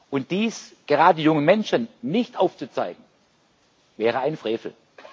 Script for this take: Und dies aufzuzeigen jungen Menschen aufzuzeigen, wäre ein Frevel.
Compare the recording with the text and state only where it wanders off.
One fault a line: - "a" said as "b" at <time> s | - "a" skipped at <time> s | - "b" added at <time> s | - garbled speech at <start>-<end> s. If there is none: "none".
- "aufzuzeigen" said as "gerade" at 0.9 s
- "nicht" added at 2.0 s